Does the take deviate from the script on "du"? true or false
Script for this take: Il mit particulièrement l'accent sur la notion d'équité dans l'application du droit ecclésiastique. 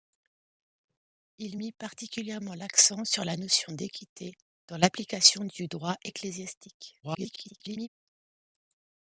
false